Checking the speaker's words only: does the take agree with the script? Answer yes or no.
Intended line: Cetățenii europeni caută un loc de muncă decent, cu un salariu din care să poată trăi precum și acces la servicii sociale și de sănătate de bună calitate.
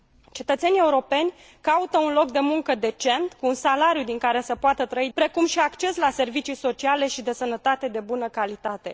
yes